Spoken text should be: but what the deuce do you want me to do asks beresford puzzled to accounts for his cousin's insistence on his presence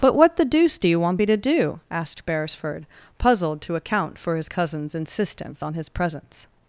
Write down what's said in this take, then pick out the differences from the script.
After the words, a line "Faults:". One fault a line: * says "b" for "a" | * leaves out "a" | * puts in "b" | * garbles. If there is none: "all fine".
but what the deuce do you want me to do asked beresford puzzled to account for his cousin's insistence on his presence
Faults:
* says "asked" for "asks"
* says "account" for "accounts"